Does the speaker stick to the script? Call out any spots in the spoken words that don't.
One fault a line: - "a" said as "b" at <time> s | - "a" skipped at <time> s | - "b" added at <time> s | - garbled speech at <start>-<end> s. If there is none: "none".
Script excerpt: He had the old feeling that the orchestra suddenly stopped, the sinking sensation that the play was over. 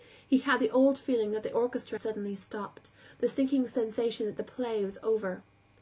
none